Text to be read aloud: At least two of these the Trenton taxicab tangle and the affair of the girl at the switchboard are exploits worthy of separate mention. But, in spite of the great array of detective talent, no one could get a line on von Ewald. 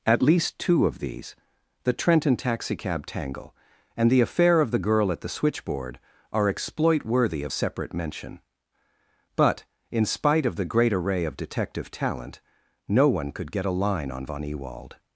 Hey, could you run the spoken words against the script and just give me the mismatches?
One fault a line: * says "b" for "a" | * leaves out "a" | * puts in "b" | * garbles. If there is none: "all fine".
* says "exploit" for "exploits"